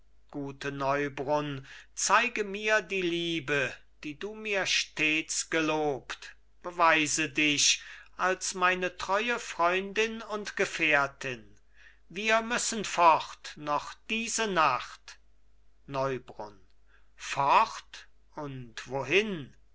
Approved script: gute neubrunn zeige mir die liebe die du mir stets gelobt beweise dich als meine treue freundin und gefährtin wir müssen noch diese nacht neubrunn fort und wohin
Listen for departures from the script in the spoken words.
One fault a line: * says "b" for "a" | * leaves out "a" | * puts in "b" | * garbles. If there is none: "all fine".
* puts in "fort"